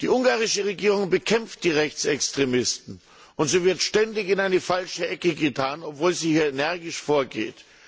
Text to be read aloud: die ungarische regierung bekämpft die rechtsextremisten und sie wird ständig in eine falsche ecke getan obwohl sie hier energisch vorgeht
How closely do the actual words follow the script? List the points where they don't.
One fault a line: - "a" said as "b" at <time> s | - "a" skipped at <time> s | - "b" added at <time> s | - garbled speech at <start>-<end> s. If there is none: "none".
none